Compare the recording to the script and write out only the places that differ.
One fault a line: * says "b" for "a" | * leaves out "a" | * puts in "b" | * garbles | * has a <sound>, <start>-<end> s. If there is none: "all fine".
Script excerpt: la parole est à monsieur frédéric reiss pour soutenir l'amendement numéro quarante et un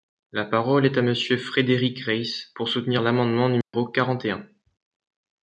* has a dropout, 3.6-3.7 s